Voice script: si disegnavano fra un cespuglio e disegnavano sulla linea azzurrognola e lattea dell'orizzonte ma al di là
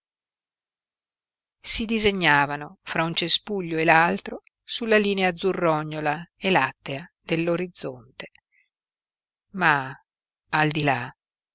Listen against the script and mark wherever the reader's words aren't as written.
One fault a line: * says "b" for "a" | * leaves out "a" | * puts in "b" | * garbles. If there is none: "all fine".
* says "l'altro" for "disegnavano"